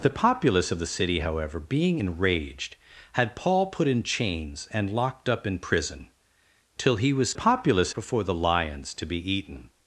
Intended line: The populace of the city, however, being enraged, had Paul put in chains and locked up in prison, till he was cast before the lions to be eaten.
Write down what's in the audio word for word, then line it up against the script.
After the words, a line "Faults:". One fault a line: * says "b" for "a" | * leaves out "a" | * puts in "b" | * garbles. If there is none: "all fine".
The populace of the city, however, being enraged, had Paul put in chains and locked up in prison, till he was populace before the lions to be eaten.
Faults:
* says "populace" for "cast"